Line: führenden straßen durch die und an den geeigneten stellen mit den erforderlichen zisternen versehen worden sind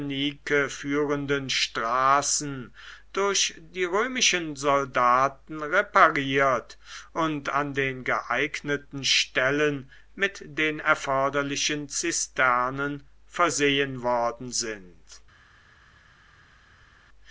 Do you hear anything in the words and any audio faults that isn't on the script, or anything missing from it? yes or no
yes